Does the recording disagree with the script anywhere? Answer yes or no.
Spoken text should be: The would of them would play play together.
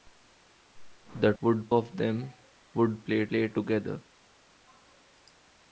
no